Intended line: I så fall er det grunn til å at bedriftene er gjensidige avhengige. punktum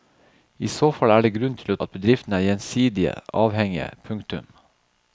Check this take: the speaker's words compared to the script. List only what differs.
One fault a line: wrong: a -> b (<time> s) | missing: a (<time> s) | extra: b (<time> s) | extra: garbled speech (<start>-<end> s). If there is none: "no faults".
no faults